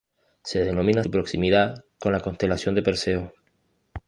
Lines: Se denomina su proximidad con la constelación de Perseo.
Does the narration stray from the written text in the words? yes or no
no